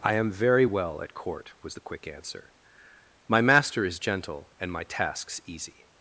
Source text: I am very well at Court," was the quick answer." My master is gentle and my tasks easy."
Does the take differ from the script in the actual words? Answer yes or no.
no